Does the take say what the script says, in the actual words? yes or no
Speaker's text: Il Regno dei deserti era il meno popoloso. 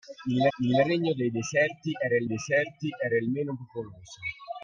no